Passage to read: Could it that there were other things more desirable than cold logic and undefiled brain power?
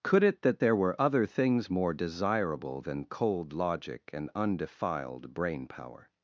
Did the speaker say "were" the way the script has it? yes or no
yes